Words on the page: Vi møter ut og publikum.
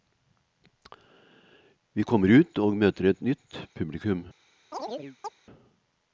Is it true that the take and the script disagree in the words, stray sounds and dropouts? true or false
true